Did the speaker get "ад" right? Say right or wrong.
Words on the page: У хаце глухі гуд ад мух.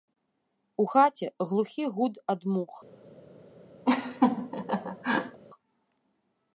right